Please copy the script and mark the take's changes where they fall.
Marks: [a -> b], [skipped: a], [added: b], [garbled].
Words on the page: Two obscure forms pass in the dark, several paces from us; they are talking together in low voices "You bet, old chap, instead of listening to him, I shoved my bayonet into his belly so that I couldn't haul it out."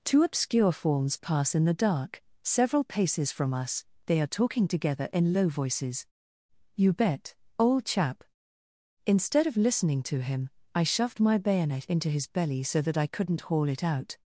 Two obscure forms pass in the dark, several paces from us; they are talking together in low voices "You bet, old chap, instead of listening to him, I shoved my bayonet into his belly so that I couldn't haul it out."